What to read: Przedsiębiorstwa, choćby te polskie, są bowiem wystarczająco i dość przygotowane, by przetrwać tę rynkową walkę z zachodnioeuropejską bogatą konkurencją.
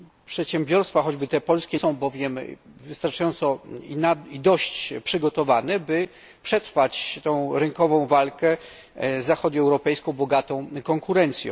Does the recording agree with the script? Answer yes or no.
yes